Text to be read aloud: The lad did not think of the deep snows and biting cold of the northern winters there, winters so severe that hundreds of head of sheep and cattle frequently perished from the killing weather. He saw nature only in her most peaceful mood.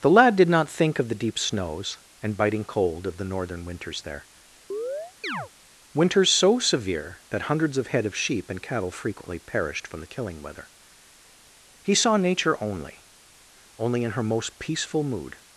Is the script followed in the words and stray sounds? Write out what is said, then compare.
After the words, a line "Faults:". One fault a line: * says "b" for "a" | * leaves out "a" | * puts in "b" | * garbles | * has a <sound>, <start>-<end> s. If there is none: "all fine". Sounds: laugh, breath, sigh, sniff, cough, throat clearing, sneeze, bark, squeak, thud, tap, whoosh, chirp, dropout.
The lad did not think of the deep snows and biting cold of the northern winters there, winters so severe that hundreds of head of sheep and cattle frequently perished from the killing weather. He saw nature only only in her most peaceful mood.
Faults:
* has a chirp, 4.7-5.5 s
* puts in "only"